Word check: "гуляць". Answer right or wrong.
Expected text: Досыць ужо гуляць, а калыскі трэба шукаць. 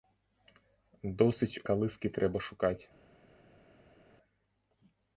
wrong